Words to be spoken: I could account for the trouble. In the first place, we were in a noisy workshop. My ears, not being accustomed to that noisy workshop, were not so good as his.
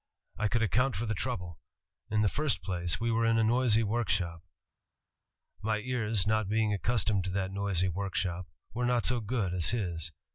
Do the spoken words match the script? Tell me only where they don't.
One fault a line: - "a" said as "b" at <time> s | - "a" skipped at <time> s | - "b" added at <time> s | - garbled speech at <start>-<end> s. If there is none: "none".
none